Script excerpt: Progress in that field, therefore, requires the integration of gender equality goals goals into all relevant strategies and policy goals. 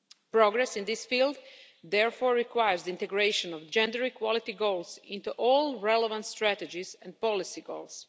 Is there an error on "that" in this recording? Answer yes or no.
yes